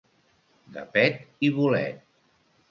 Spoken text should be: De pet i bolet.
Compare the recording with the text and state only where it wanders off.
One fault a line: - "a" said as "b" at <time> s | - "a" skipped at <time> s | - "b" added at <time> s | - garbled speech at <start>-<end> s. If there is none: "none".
none